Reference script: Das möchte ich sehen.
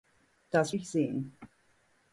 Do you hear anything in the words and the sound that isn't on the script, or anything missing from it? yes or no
yes